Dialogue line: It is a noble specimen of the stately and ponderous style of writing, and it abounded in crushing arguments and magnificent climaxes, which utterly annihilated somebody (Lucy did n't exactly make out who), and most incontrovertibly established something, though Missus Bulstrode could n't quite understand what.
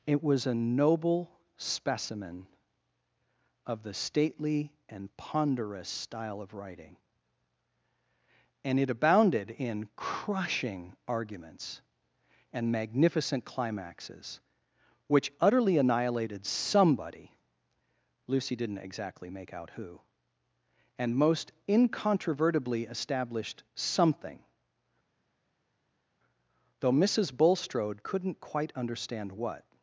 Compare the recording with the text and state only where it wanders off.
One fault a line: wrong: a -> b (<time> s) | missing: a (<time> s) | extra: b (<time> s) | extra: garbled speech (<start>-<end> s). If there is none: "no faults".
wrong: is -> was (0.2 s)